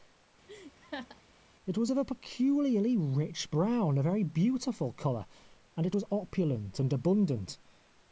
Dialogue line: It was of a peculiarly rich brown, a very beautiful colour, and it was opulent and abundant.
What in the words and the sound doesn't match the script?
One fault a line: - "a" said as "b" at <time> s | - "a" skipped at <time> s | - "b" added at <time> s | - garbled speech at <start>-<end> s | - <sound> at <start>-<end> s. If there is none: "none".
- laugh at 0.5-1.2 s